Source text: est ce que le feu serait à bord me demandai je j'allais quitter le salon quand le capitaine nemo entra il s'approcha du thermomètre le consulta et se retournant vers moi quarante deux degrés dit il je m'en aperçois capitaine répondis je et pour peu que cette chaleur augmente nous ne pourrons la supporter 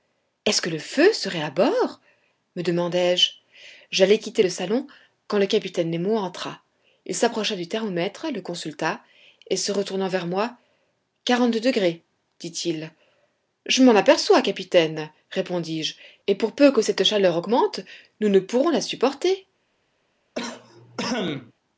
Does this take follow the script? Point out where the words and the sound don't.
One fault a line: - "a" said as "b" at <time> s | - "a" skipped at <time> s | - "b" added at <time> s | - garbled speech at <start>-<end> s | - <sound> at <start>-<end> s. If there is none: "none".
- cough at 20.3-21.5 s